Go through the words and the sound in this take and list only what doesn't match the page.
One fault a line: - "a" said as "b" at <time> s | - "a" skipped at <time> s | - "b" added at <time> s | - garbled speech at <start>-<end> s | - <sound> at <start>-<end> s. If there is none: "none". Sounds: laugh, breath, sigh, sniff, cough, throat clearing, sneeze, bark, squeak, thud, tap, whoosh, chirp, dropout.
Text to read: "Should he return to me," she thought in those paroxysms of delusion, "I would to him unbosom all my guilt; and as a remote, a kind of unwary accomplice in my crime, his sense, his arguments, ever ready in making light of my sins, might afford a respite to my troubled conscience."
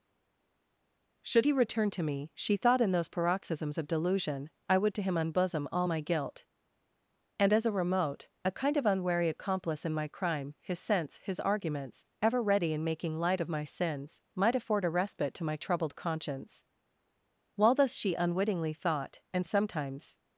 - "While thus she unwittingly thought and sometimes" added at 17.6 s